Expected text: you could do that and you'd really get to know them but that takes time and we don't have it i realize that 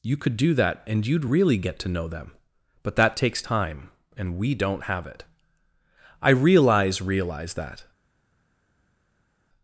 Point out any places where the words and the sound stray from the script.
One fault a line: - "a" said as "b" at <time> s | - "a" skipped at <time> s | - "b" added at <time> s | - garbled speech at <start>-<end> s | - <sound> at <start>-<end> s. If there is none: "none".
- "realize" added at 7.0 s